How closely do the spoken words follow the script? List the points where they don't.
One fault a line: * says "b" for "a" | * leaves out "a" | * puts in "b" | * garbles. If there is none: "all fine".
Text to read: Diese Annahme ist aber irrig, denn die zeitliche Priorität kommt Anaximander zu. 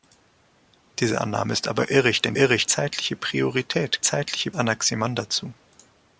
* says "irrig" for "die"
* says "zeitliche" for "kommt"